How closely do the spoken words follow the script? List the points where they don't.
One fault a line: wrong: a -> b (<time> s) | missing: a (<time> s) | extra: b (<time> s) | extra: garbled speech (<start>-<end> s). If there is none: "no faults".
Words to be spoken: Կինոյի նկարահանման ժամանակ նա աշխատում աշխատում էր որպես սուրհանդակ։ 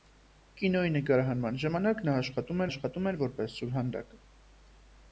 no faults